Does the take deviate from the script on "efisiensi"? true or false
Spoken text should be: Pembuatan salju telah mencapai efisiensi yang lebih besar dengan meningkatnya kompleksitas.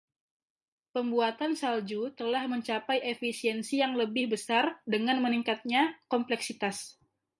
false